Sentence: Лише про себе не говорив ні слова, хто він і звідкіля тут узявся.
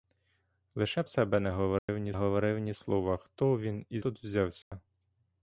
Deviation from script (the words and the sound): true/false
true